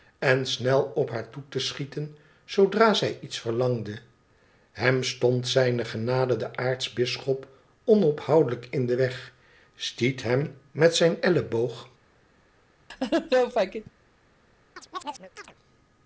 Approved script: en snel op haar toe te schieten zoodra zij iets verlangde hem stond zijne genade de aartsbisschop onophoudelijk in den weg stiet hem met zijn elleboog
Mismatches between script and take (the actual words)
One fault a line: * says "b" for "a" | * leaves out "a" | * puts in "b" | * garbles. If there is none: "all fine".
all fine